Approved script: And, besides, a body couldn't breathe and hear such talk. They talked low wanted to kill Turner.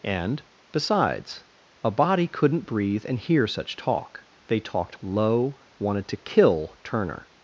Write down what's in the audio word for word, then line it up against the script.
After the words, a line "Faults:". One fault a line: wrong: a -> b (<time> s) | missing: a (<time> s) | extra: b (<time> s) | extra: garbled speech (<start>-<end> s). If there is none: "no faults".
And, besides, a body couldn't breathe and hear such talk. They talked low wanted to kill Turner.
Faults:
no faults